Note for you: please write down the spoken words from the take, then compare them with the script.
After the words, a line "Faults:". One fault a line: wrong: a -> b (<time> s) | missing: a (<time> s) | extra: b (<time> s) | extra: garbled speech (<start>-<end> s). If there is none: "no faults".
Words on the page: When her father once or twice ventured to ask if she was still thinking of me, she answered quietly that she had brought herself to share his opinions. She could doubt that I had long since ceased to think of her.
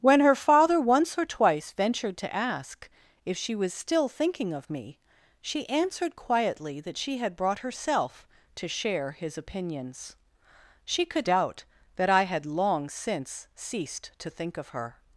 When her father once or twice ventured to ask if she was still thinking of me, she answered quietly that she had brought herself to share his opinions. She could doubt that I had long since ceased to think of her.
Faults:
no faults